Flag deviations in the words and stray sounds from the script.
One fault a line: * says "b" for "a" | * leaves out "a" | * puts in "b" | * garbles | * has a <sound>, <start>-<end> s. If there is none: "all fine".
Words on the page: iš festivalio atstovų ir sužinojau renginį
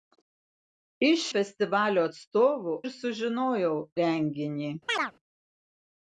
* has a chirp, 4.9-5.1 s